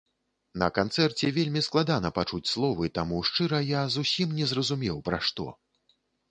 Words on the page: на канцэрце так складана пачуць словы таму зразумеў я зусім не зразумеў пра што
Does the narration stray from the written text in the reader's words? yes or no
yes